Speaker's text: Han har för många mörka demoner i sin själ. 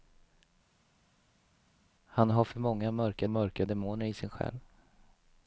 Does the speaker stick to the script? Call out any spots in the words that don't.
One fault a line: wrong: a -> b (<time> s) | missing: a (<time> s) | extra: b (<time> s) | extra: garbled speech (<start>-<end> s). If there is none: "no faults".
extra: mörka (3.3 s)